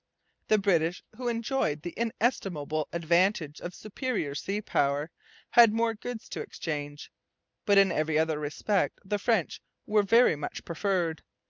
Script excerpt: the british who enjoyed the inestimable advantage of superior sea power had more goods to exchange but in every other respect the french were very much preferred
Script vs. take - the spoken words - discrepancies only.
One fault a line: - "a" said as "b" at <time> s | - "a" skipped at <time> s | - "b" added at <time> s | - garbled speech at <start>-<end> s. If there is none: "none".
none